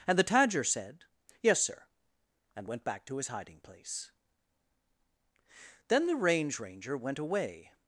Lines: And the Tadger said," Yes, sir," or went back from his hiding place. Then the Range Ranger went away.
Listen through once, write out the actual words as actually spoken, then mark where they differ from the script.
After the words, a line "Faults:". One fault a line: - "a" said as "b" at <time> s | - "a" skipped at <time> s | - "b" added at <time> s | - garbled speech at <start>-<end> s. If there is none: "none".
And the Tadger said," Yes, sir," and went back to his hiding place. Then the Range Ranger went away.
Faults:
- "or" said as "and" at 2.5 s
- "from" said as "to" at 3.1 s